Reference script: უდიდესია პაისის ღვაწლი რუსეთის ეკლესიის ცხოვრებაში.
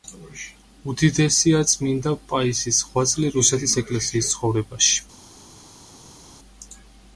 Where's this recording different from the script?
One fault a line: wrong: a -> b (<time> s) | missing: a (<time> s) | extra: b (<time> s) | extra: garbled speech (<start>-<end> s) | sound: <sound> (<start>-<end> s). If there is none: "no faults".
extra: წმინდა (1.7 s)